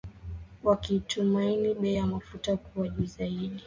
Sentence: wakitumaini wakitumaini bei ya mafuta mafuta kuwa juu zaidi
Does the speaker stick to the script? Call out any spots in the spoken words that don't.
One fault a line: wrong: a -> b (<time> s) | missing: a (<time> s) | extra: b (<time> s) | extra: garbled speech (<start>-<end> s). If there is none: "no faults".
missing: wakitumaini (1.7 s)
missing: mafuta (2.6 s)